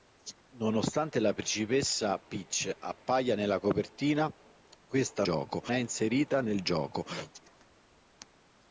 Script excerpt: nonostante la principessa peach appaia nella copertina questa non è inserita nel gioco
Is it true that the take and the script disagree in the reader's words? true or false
true